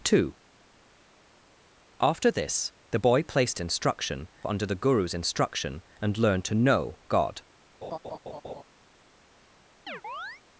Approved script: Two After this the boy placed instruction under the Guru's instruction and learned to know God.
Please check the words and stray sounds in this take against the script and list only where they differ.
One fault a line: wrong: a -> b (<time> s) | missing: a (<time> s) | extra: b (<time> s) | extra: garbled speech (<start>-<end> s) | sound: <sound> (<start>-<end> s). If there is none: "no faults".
sound: laugh (7.8-8.6 s)
sound: chirp (9.9-10.4 s)